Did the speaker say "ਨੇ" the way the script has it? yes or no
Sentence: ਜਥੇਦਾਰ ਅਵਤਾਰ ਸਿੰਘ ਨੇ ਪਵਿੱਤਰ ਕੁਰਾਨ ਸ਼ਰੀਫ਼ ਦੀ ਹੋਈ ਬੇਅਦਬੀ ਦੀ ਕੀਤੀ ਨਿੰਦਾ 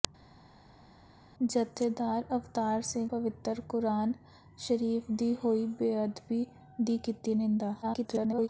no